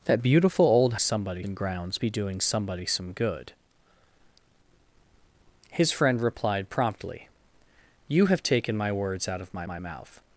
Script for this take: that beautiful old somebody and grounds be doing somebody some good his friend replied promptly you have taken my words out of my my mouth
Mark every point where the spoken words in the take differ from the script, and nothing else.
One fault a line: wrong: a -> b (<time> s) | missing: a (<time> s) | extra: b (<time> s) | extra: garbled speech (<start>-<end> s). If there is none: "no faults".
no faults